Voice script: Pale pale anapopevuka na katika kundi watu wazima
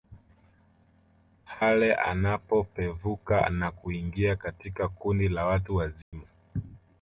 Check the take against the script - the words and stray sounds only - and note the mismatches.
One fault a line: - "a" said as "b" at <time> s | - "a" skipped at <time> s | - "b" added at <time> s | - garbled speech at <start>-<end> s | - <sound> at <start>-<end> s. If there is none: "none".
- "pale" skipped at 1.9 s
- "kuingia" added at 3.7 s
- "la" added at 5.3 s
- dropout at 6.0-6.1 s